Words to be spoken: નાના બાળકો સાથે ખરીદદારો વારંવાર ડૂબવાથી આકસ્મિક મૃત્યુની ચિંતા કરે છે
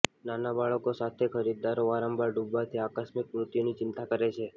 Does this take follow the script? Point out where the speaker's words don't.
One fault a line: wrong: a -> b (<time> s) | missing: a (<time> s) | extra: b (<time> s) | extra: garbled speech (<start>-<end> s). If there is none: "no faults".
no faults